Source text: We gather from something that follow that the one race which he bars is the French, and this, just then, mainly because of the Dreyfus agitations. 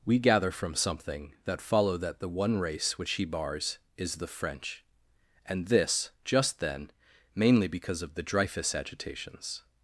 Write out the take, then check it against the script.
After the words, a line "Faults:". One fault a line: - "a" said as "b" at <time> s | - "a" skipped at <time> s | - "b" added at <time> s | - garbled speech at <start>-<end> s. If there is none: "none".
We gather from something that follow that the one race which he bars is the French, and this, just then, mainly because of the Dreyfus agitations.
Faults:
none